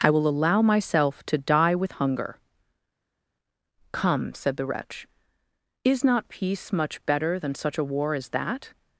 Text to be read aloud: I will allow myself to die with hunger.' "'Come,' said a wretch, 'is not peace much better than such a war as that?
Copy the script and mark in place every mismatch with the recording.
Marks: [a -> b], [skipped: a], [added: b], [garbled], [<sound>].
I will allow myself to die with hunger.' "'Come,' said [a -> the] wretch, 'is not peace much better than such a war as that?